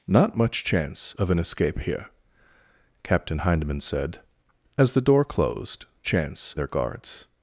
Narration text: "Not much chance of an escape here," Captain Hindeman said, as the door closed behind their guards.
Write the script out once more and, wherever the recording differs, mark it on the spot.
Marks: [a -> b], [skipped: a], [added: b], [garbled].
"Not much chance of an escape here," Captain Hindeman said, as the door closed [behind -> chance] their guards.